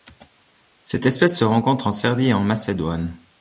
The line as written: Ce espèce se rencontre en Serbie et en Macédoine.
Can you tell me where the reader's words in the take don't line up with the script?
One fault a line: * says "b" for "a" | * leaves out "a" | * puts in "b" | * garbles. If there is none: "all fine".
* says "Cette" for "Ce"